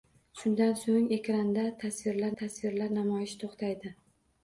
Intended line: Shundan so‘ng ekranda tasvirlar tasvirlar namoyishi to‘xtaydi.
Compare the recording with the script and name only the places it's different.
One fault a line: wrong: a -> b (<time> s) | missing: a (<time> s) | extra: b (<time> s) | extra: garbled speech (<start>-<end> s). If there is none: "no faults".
no faults